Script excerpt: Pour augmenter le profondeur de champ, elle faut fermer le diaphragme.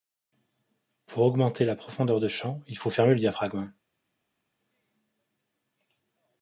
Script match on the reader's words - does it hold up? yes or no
no